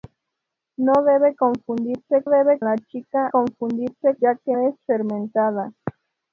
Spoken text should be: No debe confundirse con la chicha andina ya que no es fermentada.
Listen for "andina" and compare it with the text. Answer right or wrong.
wrong